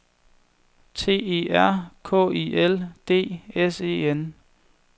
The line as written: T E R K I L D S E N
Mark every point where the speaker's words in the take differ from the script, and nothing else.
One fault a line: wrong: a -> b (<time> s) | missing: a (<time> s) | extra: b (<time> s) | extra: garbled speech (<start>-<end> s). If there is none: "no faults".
no faults